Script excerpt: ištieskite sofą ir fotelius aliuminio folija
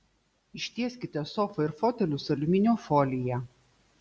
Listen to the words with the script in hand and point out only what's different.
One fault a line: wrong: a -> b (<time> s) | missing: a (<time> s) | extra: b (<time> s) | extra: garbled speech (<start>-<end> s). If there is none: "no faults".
no faults